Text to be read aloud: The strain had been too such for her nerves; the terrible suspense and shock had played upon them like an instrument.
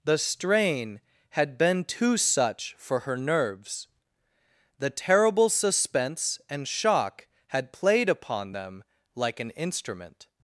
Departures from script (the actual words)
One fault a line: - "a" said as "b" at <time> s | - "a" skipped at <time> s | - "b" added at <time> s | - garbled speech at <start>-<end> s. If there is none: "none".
none